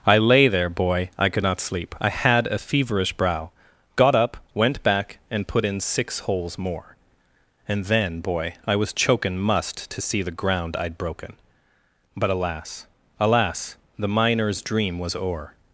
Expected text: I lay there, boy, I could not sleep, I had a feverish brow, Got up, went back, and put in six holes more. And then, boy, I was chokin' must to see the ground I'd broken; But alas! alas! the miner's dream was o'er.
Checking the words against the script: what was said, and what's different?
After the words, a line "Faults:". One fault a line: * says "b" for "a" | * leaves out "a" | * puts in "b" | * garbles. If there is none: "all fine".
I lay there, boy, I could not sleep, I had a feverish brow, Got up, went back, and put in six holes more. And then, boy, I was chokin' must to see the ground I'd broken; But alas! alas! the miner's dream was o'er.
Faults:
all fine